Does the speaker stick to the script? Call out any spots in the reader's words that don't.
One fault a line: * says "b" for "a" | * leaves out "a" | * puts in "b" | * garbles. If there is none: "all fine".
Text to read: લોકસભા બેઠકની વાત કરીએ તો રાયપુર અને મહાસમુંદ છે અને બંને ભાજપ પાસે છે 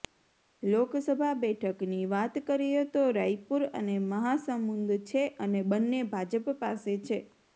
all fine